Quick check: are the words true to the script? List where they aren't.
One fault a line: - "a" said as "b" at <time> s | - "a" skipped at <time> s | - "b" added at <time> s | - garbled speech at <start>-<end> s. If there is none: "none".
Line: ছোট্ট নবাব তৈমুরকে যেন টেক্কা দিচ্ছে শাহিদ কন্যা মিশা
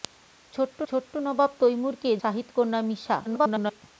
- "ছোট্ট" added at 0.9 s
- "যেন টেক্কা দিচ্ছে" skipped at 2.1 s
- garbled speech at 3.2-3.8 s